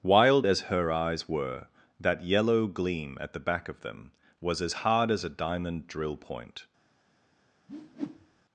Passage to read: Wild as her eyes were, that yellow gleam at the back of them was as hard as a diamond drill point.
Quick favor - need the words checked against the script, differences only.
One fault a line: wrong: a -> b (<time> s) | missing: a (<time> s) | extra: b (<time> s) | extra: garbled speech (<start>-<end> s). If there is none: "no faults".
no faults